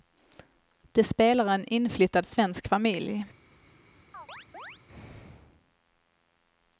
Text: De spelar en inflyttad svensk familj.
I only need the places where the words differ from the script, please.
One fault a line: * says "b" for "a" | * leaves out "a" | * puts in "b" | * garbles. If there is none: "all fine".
all fine